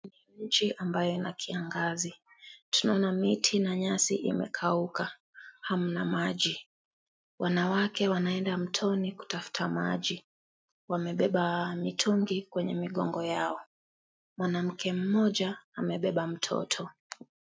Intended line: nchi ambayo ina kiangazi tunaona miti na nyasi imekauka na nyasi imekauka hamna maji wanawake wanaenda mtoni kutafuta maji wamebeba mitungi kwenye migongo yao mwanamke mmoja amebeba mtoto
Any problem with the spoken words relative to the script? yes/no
yes